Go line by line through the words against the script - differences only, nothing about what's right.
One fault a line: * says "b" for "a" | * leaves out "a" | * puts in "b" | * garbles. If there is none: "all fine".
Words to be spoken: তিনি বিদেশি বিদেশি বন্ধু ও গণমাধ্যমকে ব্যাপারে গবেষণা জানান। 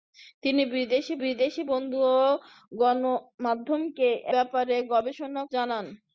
all fine